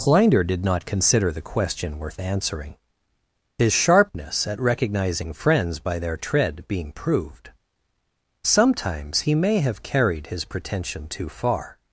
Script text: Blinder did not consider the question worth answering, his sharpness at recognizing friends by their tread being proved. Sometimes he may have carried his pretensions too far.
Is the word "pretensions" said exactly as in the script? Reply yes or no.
no